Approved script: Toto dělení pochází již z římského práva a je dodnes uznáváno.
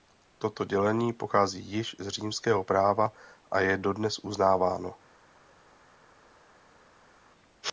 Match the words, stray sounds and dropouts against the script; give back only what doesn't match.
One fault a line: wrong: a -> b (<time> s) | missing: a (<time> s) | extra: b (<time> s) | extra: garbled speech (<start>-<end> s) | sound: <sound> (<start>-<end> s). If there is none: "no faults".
no faults